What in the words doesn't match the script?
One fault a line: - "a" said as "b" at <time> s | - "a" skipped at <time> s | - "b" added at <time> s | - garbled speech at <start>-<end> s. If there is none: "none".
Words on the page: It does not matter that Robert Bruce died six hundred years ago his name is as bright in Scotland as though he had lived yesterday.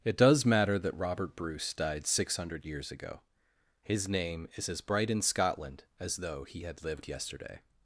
- "not" skipped at 0.5 s